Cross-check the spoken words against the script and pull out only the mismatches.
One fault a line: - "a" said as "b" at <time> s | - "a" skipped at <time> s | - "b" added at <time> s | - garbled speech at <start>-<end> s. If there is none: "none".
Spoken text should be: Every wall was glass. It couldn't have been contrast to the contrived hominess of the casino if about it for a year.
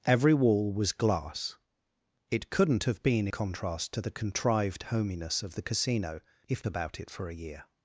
none